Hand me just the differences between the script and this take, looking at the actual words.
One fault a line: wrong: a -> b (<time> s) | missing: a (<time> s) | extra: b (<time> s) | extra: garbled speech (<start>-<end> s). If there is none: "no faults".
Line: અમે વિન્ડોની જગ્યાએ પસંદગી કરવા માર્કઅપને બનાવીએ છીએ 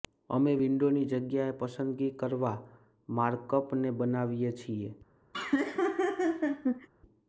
no faults